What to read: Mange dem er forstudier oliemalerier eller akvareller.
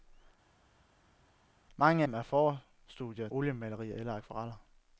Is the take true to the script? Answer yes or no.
yes